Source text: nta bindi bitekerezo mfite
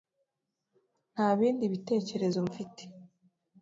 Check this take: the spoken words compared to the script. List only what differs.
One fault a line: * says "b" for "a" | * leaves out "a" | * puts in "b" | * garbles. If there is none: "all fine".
all fine